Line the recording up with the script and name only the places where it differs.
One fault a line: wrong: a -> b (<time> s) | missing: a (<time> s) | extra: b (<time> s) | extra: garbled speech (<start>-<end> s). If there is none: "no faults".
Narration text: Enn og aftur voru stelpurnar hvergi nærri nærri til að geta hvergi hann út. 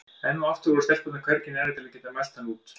missing: nærri (1.8 s)
wrong: hvergi -> mælt (2.2 s)